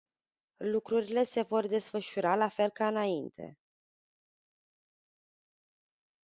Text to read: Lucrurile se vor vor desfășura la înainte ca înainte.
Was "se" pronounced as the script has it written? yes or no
yes